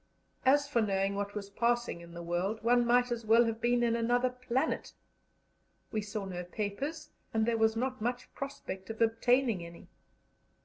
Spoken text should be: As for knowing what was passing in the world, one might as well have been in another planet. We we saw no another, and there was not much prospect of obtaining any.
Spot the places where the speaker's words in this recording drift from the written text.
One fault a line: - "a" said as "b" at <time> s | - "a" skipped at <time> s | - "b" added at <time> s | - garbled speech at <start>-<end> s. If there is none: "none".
- "we" skipped at 6.0 s
- "another" said as "papers" at 6.4 s